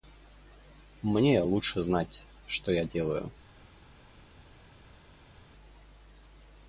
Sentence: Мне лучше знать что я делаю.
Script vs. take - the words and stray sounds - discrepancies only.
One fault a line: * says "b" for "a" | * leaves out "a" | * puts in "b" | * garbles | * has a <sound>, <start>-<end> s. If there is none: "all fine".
all fine